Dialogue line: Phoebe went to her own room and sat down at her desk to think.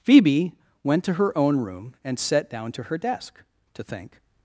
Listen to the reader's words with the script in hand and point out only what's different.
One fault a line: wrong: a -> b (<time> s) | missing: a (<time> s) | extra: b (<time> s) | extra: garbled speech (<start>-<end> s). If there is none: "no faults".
wrong: at -> to (2.7 s)